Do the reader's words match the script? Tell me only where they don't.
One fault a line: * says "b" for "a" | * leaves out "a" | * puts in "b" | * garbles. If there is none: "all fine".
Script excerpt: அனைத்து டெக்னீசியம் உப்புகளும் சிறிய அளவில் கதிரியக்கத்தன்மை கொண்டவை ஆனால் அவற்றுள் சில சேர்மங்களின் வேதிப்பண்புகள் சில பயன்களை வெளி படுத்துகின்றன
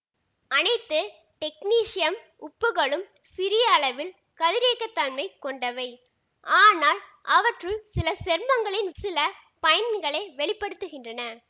* leaves out "வேதிப்பண்புகள்"